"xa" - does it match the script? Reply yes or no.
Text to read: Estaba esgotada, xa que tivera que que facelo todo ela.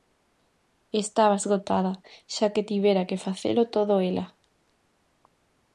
yes